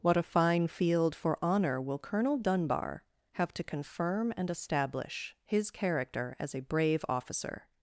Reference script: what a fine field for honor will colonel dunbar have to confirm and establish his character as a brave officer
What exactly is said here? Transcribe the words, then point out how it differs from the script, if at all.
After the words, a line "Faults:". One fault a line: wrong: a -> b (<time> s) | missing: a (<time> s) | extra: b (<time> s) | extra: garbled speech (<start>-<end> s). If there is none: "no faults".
what a fine field for honor will colonel dunbar have to confirm and establish his character as a brave officer
Faults:
no faults